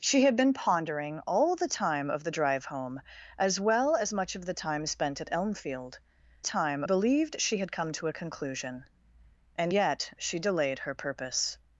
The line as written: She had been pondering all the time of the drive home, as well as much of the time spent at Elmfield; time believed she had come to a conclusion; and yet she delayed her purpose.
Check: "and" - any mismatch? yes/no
no